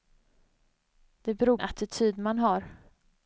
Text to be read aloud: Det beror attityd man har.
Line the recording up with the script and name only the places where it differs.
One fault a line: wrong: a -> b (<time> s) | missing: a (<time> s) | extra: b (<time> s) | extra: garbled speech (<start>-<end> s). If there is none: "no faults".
no faults